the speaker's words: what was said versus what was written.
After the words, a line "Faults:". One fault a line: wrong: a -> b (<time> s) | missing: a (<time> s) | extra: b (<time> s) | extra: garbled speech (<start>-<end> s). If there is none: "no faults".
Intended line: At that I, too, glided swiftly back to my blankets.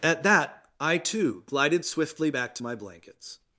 At that I, too, glided swiftly back to my blankets.
Faults:
no faults